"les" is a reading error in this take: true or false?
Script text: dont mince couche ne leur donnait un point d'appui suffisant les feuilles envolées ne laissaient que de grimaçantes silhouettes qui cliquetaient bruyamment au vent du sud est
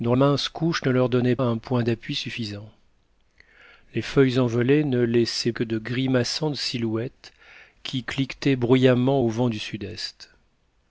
false